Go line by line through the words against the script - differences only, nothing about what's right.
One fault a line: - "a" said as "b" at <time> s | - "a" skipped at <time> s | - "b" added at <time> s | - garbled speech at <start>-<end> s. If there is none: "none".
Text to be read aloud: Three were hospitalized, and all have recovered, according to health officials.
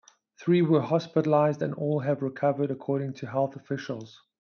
none